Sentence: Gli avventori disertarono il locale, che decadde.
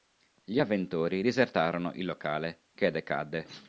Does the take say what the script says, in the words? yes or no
yes